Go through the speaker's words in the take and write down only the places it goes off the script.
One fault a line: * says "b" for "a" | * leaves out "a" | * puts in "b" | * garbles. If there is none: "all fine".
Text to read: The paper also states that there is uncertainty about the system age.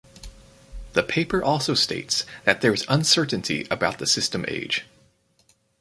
all fine